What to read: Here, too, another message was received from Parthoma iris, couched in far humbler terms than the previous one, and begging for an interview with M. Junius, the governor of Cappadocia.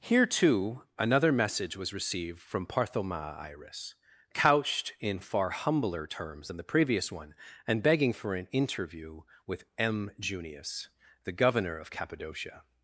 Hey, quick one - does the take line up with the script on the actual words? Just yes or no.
yes